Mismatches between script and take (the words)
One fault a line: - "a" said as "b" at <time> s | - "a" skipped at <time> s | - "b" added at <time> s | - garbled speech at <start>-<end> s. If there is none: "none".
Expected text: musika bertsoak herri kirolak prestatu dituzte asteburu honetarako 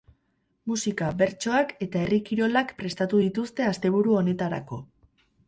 - "eta" added at 1.9 s